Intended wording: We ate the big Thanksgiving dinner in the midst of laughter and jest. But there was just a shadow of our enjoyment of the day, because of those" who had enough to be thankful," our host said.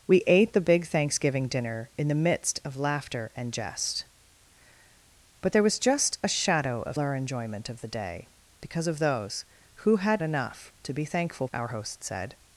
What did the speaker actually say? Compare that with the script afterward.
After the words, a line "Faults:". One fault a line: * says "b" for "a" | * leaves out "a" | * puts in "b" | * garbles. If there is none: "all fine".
We ate the big Thanksgiving dinner in the midst of laughter and jest. But there was just a shadow of our enjoyment of the day, because of those" who had enough to be thankful," our host said.
Faults:
all fine